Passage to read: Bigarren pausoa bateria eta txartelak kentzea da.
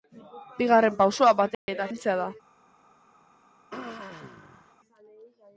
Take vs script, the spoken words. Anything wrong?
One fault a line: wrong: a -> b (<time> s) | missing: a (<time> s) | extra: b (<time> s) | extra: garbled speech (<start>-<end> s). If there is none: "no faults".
missing: txartelak (1.9 s)